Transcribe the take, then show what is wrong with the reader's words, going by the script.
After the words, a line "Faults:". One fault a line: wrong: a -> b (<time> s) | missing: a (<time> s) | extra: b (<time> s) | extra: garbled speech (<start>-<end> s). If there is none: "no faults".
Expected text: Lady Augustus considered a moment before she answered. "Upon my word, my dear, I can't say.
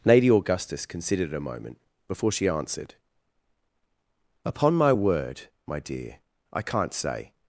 Lady Augustus considered a moment before she answered. "Upon my word, my dear, I can't say.
Faults:
no faults